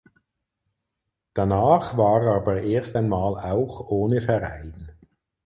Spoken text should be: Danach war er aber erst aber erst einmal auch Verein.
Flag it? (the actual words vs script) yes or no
yes